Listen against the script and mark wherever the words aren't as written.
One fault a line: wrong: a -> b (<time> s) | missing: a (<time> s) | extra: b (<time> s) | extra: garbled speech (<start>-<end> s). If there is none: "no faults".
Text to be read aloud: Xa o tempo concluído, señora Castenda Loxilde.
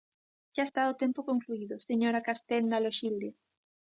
extra: está (0.7 s)